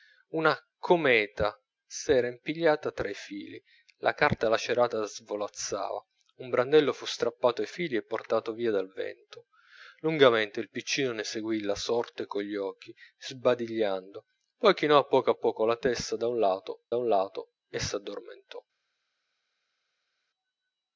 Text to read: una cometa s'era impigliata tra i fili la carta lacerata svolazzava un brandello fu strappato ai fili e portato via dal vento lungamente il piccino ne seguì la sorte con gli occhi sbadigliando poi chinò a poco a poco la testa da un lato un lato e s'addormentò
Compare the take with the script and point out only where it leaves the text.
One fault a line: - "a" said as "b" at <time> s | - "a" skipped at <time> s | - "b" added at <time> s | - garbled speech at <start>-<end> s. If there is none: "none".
none